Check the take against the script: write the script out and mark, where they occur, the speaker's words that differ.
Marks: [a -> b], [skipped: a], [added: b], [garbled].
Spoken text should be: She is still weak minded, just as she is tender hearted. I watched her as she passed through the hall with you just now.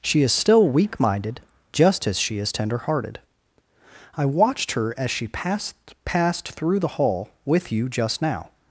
She is still weak minded, just as she is tender hearted. I watched her as she passed [added: passed] through the hall with you just now.